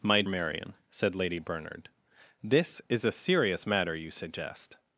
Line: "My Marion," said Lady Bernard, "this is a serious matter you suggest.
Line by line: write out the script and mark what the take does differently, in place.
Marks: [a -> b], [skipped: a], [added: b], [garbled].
"My Marion," said Lady Bernard, "this is a serious matter you suggest.